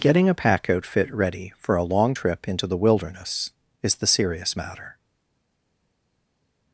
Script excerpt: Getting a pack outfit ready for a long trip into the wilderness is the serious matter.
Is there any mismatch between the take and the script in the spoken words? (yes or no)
no